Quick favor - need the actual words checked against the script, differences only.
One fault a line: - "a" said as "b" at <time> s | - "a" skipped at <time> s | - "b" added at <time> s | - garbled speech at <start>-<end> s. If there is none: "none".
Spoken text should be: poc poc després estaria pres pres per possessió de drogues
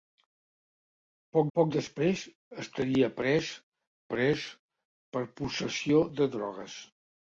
none